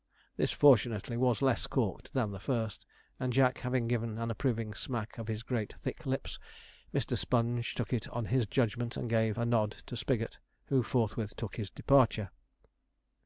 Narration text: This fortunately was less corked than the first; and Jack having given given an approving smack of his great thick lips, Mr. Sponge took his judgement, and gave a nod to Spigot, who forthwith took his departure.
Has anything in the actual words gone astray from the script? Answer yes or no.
yes